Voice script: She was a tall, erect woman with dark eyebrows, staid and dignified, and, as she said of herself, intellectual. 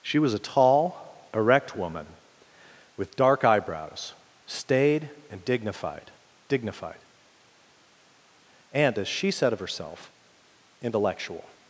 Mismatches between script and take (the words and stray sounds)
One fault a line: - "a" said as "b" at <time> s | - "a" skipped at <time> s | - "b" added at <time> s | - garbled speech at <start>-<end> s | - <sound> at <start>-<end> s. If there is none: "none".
- "dignified" added at 6.5 s